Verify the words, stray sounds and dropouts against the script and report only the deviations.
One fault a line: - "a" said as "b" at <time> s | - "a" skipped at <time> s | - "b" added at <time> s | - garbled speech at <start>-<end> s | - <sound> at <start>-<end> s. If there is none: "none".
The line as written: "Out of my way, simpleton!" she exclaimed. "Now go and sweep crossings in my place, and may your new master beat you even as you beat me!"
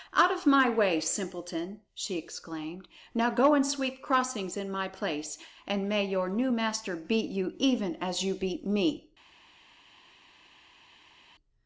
none